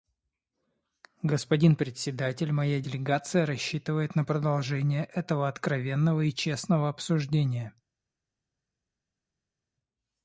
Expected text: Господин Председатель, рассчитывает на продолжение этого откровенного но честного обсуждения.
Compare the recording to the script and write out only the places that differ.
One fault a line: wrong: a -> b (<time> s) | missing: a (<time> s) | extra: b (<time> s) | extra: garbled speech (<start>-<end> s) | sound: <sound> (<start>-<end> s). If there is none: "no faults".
extra: моя делегация (2.5 s)
wrong: но -> и (6.2 s)